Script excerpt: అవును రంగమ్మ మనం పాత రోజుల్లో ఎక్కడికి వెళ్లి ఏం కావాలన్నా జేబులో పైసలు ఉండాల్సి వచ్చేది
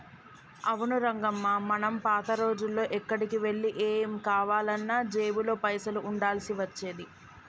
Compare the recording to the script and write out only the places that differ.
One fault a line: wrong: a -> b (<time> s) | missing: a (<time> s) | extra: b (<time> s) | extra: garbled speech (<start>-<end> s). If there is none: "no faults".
no faults